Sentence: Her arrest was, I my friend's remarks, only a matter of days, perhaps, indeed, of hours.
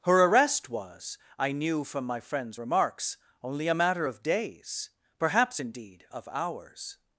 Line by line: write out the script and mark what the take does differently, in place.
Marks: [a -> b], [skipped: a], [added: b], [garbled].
Her arrest was, I [added: knew from] my friend's remarks, only a matter of days, perhaps, indeed, of hours.